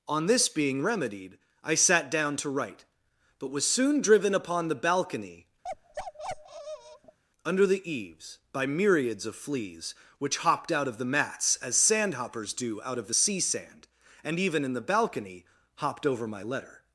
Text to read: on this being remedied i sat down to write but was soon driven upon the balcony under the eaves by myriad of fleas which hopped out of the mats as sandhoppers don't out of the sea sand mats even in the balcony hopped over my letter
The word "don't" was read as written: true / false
false